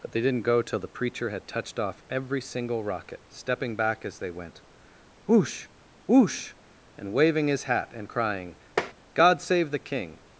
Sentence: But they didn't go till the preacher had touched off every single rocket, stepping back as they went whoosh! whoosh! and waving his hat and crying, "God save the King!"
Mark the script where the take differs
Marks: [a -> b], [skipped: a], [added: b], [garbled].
But they didn't go till the preacher had touched off every single rocket, stepping back as they went whoosh! whoosh! and waving his hat and crying, "God save the King!"